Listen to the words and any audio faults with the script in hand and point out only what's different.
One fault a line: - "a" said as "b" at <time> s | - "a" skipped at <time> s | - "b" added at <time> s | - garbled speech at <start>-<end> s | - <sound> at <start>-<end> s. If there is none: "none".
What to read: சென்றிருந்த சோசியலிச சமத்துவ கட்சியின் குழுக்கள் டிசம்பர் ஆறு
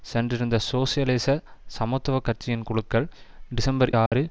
- dropout at 4.1-4.1 s